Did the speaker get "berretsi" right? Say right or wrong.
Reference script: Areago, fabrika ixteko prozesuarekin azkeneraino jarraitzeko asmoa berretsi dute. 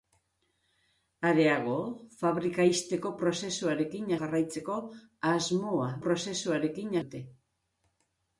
wrong